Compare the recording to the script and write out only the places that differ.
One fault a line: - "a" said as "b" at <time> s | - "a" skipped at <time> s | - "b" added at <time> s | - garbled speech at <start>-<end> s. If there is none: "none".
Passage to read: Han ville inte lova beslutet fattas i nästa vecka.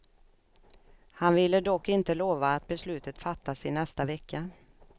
- "dock" added at 1.6 s
- "att" added at 2.5 s